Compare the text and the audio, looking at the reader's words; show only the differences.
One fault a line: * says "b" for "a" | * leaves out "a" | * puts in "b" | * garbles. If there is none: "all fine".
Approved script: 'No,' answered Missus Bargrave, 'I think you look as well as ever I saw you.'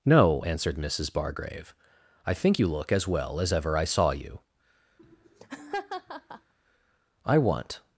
* puts in "I want"